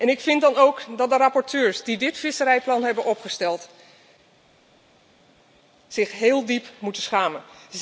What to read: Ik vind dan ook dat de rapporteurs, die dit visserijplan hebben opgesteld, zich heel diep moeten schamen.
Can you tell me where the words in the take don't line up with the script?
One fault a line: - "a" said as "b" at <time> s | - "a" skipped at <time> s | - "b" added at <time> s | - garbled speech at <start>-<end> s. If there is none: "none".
none